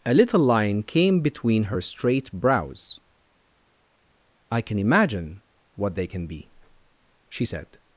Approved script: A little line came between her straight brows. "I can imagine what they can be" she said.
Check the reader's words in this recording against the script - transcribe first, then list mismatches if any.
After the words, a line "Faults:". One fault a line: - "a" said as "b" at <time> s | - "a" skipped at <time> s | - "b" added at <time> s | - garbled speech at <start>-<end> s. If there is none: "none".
A little line came between her straight brows. "I can imagine what they can be" she said.
Faults:
none